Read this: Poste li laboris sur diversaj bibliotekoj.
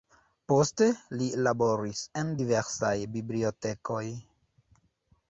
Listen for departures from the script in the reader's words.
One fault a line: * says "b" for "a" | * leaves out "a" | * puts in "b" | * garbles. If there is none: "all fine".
* says "en" for "sur"